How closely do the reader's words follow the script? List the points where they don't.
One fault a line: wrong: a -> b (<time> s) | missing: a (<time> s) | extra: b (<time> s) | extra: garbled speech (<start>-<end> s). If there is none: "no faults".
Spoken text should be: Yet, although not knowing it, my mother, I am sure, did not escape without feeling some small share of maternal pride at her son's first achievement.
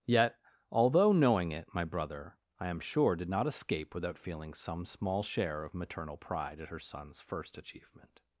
missing: not (1.1 s)
wrong: mother -> brother (1.8 s)